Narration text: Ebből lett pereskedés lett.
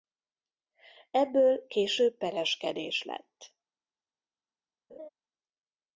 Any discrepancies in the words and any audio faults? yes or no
yes